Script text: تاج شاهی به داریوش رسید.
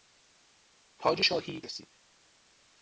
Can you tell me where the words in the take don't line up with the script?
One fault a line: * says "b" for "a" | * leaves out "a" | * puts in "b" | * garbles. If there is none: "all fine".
* leaves out "به داریوش"